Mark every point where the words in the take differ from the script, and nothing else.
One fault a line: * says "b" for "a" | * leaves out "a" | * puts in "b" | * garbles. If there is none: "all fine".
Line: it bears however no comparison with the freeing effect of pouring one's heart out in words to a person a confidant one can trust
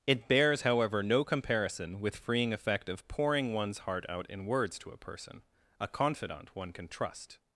* leaves out "the"